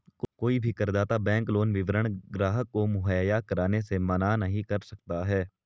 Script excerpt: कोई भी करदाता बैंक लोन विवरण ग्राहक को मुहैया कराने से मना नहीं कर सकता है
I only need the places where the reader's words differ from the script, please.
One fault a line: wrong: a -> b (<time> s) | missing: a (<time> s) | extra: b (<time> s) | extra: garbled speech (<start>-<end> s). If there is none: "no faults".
no faults